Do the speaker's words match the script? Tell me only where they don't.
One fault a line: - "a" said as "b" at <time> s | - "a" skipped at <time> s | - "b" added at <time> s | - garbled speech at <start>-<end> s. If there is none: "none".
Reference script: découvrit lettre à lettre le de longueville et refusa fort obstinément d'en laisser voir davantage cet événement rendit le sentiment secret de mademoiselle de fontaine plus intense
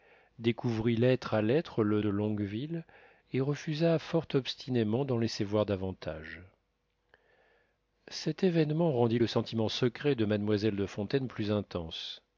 none